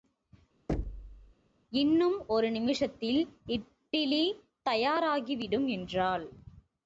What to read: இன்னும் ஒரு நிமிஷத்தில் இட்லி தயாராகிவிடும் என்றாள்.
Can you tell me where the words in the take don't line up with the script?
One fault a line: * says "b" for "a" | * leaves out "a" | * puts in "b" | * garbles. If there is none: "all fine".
all fine